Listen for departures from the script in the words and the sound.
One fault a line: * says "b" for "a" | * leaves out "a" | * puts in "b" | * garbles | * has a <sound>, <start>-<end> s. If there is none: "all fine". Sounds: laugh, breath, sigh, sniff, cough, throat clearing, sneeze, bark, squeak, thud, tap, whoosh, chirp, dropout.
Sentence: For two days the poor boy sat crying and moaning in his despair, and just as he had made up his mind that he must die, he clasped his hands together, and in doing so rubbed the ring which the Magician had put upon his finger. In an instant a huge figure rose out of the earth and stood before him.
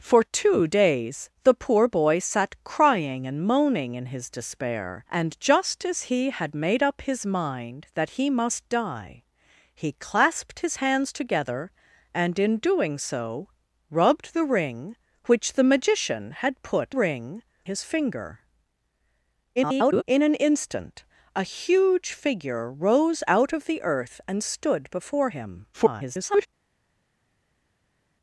* says "ring" for "upon"
* garbles
* garbles